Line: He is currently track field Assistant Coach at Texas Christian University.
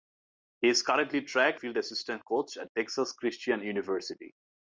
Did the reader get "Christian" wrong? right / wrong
right